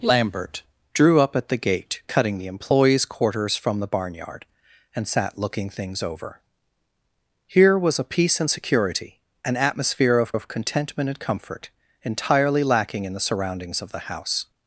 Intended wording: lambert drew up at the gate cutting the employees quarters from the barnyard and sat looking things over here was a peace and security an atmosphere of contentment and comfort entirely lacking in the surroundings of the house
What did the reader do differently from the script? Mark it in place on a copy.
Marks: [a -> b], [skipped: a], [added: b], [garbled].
lambert drew up at the gate cutting the employees quarters from the barnyard and sat looking things over here was a peace and security an atmosphere of [added: of] contentment and comfort entirely lacking in the surroundings of the house